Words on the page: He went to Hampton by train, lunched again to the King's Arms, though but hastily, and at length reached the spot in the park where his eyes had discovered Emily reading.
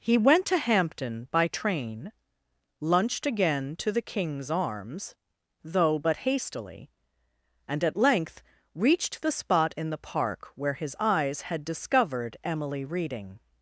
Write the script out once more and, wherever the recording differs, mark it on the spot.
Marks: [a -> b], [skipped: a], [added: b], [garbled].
He went to Hampton by train, lunched again to the King's Arms, though but hastily, and at length reached the spot in the park where his eyes had discovered Emily reading.